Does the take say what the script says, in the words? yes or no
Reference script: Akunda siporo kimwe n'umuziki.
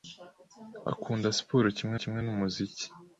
no